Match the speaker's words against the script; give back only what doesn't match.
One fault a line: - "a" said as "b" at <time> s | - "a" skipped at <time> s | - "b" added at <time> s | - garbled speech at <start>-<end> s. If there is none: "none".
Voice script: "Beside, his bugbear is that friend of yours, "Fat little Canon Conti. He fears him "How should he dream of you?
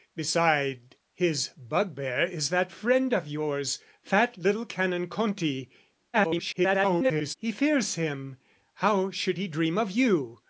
- garbled speech at 6.1-7.3 s